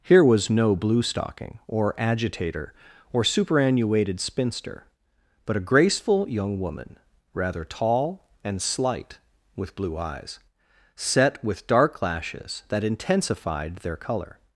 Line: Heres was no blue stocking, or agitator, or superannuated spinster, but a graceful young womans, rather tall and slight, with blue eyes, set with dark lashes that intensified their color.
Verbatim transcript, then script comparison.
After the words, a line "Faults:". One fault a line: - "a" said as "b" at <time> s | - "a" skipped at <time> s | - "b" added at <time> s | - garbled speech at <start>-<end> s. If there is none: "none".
Here was no blue stocking, or agitator, or superannuated spinster, but a graceful young woman, rather tall and slight, with blue eyes, set with dark lashes that intensified their color.
Faults:
- "Heres" said as "Here" at 0.0 s
- "womans" said as "woman" at 6.6 s